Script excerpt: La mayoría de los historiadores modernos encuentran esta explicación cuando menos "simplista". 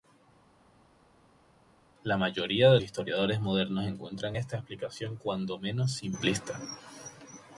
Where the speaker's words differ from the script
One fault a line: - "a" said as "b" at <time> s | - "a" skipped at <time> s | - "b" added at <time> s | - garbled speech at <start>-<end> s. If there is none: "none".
- "los" skipped at 2.8 s